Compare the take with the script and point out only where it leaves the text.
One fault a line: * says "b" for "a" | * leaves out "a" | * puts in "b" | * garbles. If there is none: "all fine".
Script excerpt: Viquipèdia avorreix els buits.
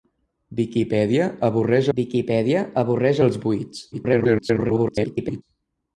* puts in "viquipèdia avorreix"
* garbles